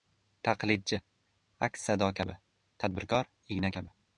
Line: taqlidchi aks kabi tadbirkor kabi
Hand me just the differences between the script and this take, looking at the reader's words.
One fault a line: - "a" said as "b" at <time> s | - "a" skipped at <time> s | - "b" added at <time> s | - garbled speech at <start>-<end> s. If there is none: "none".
- "sado" added at 1.9 s
- "igna" added at 3.5 s